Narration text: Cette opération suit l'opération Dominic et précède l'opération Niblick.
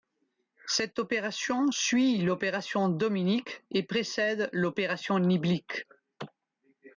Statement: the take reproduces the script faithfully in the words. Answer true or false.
true